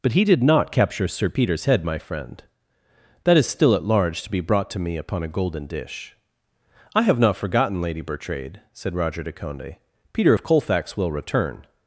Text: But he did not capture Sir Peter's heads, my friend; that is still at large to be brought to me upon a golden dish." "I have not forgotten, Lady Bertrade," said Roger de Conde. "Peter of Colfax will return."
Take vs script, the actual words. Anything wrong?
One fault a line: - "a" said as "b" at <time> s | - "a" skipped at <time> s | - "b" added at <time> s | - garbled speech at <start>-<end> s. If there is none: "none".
- "heads" said as "head" at 1.6 s